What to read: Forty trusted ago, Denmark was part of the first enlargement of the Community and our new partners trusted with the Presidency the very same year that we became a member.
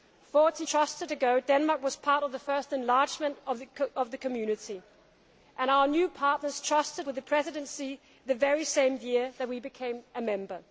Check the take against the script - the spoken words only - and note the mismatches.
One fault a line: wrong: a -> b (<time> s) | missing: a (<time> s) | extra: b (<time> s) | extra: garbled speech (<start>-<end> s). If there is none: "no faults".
no faults